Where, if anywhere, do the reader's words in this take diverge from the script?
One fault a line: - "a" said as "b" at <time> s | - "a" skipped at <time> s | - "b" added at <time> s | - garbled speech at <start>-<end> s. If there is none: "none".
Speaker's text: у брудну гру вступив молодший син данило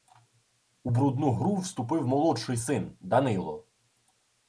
none